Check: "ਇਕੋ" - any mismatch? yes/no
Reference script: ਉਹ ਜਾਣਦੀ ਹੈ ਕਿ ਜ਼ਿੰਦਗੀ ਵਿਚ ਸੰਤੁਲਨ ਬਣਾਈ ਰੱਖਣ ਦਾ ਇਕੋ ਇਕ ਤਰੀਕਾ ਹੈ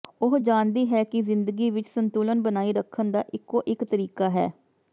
no